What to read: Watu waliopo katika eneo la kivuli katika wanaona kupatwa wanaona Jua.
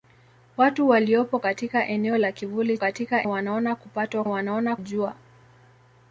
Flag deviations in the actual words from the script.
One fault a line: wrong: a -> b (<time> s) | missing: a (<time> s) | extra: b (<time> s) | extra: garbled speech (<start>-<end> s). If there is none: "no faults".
no faults